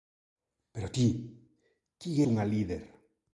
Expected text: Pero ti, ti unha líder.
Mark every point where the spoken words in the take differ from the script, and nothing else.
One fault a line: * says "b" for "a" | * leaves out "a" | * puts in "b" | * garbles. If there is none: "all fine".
all fine